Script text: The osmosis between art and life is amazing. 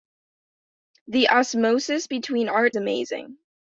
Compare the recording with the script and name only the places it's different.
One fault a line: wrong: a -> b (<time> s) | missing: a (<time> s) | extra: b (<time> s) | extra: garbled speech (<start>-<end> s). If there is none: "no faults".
missing: and life is (2.7 s)